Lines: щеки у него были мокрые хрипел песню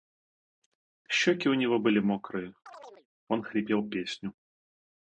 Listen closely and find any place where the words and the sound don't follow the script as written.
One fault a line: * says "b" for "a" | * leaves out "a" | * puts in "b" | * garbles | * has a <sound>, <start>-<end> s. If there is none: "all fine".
* has a chirp, 2.7-3.1 s
* puts in "он"